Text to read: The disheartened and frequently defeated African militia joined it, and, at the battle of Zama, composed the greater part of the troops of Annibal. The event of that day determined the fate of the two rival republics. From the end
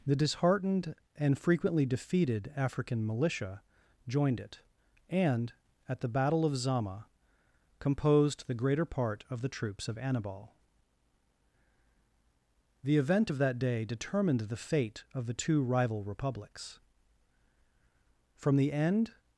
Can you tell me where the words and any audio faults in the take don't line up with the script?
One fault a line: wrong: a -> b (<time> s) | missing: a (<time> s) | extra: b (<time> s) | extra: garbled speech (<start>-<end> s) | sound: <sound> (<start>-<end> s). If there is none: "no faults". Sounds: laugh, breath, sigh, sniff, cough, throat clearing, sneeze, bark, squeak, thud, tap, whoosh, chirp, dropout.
no faults